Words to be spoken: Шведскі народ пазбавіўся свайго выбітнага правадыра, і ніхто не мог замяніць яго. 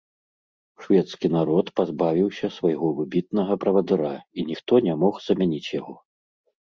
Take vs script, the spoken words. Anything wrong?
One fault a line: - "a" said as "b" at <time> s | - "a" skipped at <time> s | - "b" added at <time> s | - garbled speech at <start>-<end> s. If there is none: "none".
none